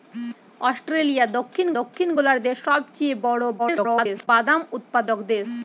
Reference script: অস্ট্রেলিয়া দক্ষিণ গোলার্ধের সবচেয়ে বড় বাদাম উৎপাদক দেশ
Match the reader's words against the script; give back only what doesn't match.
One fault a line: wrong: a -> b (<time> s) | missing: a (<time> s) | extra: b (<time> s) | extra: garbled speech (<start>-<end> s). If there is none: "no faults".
extra: দক্ষিণ (1.8 s)
extra: garbled speech (3.6-4.3 s)